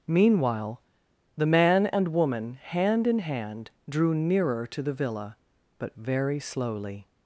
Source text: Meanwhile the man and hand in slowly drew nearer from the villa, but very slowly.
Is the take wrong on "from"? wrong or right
wrong